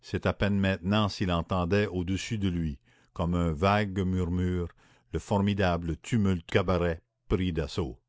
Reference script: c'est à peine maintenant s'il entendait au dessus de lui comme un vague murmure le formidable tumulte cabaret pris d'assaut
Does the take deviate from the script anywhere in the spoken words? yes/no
no